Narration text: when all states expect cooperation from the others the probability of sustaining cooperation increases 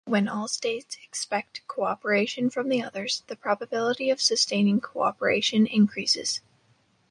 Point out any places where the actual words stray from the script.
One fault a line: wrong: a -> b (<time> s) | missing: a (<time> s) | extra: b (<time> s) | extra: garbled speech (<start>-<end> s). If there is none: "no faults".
no faults